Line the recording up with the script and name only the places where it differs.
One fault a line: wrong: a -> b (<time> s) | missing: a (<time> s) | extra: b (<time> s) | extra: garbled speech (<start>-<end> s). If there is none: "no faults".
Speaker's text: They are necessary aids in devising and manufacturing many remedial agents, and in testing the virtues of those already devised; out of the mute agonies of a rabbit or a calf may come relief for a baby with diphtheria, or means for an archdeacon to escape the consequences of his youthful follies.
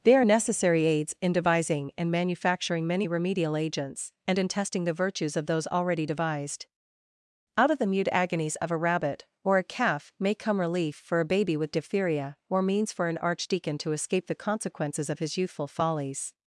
no faults